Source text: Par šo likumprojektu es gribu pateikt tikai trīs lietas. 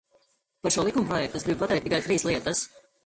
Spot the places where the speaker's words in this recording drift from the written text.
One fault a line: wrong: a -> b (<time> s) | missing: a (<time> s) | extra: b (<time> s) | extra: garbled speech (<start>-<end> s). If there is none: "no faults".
no faults